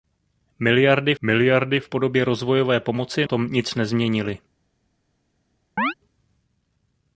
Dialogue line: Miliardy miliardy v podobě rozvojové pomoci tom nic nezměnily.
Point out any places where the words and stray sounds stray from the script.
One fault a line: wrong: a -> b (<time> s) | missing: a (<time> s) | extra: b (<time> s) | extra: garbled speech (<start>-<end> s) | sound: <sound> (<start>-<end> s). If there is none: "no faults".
sound: chirp (5.8-5.9 s)